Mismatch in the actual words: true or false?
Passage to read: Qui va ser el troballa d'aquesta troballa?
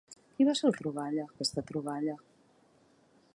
false